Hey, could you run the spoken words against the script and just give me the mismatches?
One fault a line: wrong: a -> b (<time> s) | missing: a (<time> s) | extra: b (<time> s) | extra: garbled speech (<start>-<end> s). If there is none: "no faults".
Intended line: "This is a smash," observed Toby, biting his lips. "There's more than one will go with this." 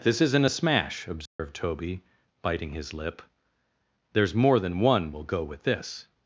wrong: is -> isn't (0.2 s)
wrong: lips -> lip (2.9 s)